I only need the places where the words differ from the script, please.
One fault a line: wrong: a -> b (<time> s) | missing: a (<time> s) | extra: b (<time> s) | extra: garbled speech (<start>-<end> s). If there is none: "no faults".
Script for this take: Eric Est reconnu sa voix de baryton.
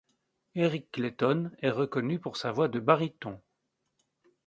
extra: Clayton (0.9 s)
extra: pour (2.2 s)